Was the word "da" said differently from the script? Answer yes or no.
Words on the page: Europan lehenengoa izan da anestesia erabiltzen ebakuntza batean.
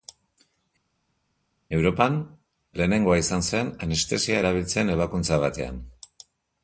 yes